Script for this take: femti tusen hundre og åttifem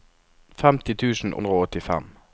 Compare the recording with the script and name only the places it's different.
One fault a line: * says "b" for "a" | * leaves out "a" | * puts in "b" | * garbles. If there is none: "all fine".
all fine